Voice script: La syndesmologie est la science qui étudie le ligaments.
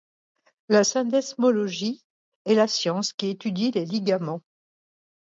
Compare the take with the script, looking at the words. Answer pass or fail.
fail